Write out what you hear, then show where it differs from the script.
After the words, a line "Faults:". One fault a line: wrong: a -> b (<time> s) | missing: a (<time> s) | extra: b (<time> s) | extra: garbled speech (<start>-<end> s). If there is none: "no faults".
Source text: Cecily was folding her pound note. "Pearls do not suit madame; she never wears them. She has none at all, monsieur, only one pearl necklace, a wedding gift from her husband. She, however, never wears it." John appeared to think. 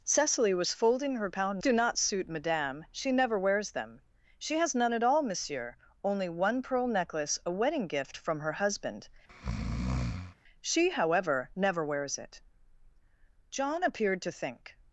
Cecily was folding her pound do not suit madame; she never wears them. She has none at all, monsieur, only one pearl necklace, a wedding gift from her husband. She, however, never wears it." John appeared to think.
Faults:
missing: note Pearls (1.6 s)